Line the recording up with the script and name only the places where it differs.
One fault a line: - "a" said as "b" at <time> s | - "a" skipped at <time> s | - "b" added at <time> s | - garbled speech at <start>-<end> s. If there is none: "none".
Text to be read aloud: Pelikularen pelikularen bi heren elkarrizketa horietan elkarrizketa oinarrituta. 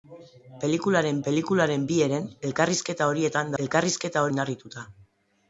none